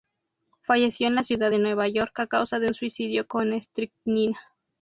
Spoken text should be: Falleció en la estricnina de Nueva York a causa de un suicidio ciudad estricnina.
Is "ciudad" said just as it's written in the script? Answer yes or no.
no